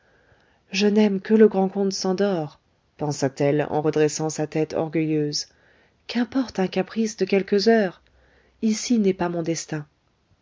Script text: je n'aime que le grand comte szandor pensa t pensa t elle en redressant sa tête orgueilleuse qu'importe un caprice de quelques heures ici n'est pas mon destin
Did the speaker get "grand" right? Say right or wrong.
right